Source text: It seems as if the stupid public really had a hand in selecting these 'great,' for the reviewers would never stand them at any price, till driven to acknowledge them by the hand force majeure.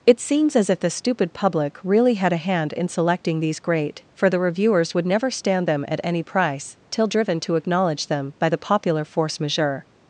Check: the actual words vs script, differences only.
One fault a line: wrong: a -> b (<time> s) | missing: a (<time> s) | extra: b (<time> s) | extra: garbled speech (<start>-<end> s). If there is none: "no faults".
wrong: hand -> popular (8.6 s)